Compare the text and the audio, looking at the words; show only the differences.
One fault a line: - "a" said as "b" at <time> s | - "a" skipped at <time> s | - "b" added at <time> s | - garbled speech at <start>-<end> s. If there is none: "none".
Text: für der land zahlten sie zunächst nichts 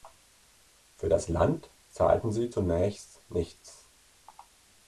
- "der" said as "das" at 1.1 s